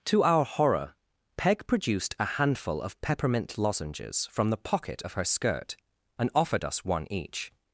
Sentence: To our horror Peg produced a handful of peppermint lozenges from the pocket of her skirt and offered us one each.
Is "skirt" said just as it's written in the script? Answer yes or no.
yes